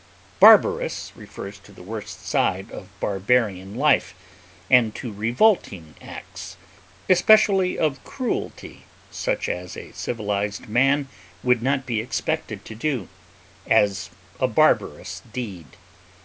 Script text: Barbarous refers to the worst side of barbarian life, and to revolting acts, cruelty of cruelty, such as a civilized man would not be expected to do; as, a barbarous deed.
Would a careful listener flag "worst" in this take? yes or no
no